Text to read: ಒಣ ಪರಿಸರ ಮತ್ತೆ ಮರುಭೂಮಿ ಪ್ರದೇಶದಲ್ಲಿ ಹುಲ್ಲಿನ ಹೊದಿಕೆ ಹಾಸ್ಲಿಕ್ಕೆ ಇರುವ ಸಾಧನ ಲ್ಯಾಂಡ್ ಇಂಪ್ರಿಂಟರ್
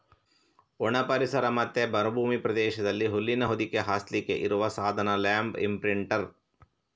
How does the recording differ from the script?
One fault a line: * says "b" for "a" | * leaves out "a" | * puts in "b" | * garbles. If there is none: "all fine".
all fine